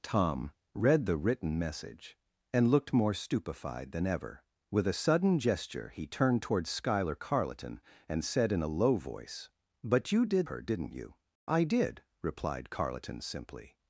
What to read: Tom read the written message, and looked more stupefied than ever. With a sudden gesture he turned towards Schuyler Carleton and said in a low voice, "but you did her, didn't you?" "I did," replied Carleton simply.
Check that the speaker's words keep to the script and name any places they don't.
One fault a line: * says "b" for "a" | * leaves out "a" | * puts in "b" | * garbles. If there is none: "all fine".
all fine